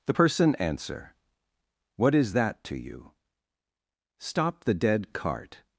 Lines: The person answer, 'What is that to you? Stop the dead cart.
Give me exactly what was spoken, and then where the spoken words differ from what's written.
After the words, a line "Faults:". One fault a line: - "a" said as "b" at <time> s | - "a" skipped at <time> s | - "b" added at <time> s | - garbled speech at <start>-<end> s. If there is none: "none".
The person answer, 'What is that to you? Stop the dead cart.
Faults:
none